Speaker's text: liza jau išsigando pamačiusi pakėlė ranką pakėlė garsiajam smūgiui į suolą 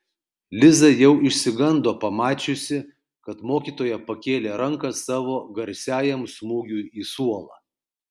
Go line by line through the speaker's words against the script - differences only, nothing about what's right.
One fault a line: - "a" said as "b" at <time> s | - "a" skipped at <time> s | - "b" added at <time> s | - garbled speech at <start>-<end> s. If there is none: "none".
- "kad mokytoja" added at 3.3 s
- "pakėlė" said as "savo" at 5.0 s